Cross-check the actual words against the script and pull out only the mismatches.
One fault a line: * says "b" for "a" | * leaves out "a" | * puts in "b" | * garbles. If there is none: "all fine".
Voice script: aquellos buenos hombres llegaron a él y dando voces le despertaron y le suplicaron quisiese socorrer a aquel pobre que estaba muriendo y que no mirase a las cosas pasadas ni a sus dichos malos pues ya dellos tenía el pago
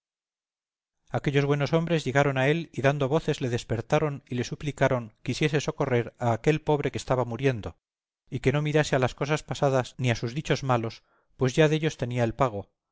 all fine